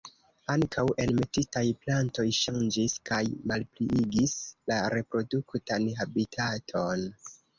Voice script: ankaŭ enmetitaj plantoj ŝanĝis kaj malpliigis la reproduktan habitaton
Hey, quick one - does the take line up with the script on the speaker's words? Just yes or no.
yes